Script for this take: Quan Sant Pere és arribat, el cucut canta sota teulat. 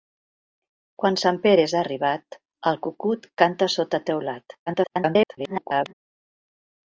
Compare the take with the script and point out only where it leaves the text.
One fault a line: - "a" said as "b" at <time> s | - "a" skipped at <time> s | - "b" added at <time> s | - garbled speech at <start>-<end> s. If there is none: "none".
- garbled speech at 4.7-5.9 s